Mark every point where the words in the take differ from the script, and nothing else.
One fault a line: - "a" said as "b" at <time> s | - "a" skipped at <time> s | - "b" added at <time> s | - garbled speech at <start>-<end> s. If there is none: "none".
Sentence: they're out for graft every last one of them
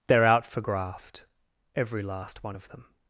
none